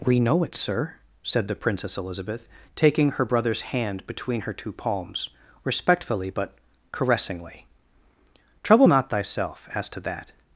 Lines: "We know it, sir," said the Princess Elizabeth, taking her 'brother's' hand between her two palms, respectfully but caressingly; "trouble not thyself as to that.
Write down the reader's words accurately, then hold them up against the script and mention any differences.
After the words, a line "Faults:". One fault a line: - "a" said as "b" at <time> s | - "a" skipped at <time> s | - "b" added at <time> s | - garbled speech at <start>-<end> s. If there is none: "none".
"We know it, sir," said the Princess Elizabeth, taking her 'brother's' hand between her two palms, respectfully but caressingly; "trouble not thyself as to that.
Faults:
none